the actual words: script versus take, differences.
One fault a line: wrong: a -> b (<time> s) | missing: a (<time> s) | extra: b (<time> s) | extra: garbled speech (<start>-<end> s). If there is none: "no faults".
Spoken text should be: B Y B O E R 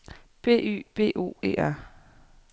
no faults